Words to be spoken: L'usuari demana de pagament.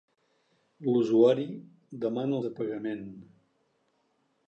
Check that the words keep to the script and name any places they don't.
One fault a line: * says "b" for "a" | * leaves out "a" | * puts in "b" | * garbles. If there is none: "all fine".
all fine